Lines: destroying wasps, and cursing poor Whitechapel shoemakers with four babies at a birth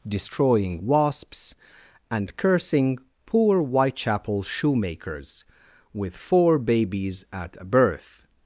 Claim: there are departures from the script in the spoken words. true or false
false